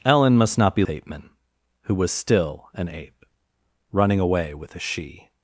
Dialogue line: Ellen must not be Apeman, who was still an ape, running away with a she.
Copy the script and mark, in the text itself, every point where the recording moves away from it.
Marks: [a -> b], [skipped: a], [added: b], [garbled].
Ellen must not be Apeman, who was still an ape, running away with a she.